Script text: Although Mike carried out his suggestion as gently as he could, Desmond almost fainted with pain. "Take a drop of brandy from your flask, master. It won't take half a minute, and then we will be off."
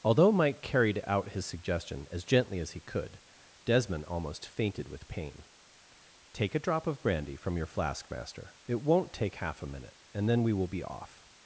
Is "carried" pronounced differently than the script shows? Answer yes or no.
no